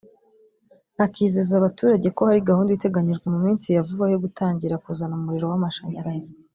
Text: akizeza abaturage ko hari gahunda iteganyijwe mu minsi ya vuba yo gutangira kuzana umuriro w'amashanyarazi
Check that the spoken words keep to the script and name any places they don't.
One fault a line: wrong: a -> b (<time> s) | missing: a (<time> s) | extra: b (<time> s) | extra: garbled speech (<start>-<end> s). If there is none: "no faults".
no faults